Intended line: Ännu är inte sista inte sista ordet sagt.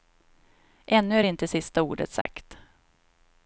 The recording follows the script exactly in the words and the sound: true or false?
false